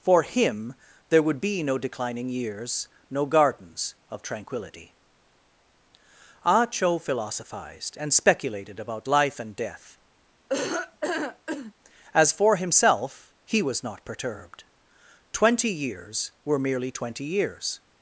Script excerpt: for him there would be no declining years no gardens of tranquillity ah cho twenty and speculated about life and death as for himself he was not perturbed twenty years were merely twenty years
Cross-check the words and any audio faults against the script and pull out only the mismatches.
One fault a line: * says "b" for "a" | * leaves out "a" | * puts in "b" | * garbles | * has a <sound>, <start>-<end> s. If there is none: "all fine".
* says "philosophized" for "twenty"
* has a laugh, 10.5-11.7 s